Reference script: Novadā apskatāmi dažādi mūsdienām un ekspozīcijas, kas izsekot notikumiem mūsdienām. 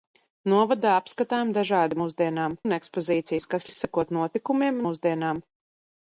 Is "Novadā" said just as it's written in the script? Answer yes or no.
yes